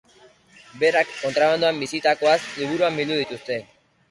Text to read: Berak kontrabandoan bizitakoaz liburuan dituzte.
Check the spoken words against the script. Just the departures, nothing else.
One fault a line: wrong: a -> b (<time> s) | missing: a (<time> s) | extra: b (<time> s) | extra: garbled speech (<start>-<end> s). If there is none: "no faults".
extra: bildu (3.0 s)